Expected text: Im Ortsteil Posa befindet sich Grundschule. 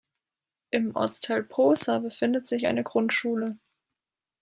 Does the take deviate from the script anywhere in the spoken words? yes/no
yes